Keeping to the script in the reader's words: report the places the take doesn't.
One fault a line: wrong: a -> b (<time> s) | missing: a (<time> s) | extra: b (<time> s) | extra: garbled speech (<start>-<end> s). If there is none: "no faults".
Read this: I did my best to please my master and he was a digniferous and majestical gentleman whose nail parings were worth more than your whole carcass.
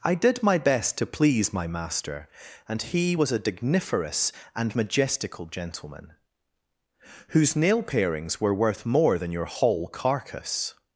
no faults